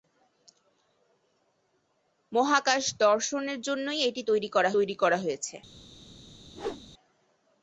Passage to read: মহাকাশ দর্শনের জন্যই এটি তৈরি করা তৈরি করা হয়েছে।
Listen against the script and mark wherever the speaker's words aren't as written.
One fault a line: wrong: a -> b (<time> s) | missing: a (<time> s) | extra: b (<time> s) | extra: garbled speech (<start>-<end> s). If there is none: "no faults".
no faults